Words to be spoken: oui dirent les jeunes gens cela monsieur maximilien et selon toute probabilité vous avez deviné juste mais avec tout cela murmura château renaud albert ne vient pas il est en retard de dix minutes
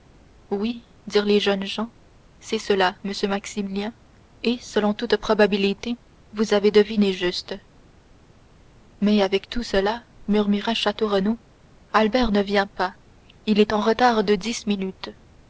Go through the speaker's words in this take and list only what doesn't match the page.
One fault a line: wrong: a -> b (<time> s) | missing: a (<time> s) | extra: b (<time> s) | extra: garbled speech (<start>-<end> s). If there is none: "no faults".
extra: c'est (2.4 s)